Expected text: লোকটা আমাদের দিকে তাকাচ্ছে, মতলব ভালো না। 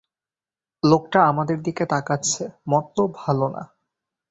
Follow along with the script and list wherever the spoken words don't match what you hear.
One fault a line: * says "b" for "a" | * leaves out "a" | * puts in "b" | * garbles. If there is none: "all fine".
all fine